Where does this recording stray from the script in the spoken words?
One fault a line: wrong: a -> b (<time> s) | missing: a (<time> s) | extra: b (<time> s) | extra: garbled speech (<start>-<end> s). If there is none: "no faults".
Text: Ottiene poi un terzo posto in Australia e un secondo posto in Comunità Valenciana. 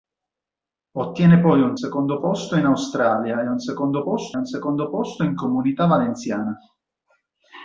wrong: terzo -> secondo (1.7 s)
extra: un secondo posto (4.3 s)